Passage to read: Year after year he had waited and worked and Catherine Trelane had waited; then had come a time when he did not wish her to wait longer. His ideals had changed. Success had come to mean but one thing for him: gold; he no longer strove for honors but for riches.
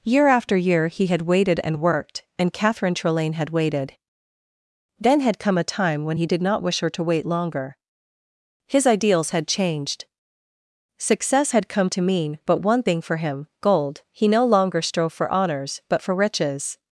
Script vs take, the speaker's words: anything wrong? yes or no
no